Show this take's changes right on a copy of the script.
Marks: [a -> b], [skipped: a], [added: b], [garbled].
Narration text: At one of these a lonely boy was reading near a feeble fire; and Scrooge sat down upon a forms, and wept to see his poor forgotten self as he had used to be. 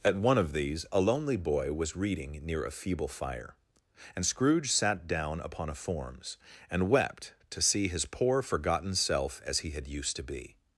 At one of these a lonely boy was reading near a feeble fire; and Scrooge sat down upon a forms, and wept to see his poor forgotten self as he had used to be.